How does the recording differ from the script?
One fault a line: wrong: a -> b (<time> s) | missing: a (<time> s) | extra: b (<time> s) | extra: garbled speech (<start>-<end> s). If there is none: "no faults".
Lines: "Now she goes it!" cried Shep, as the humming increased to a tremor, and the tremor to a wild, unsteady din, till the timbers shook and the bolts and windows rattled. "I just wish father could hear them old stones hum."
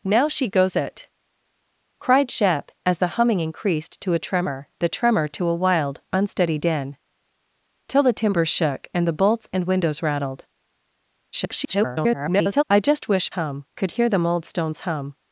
missing: and (4.7 s)
extra: garbled speech (11.3-12.6 s)
wrong: father -> hum (13.3 s)